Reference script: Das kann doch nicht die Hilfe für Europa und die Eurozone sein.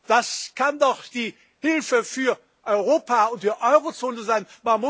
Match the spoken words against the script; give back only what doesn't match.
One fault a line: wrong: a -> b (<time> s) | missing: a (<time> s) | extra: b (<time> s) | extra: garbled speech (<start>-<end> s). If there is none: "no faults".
missing: nicht (1.0 s)